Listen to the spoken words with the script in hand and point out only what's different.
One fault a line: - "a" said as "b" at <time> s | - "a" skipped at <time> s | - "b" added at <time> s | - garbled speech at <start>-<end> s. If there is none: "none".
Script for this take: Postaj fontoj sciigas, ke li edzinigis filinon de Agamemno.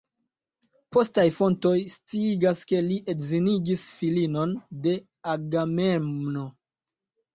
none